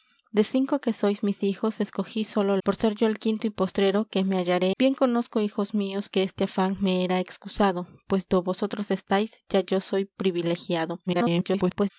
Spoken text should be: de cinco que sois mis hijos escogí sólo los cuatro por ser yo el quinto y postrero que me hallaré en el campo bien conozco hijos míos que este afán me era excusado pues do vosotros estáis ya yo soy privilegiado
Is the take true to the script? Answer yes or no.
no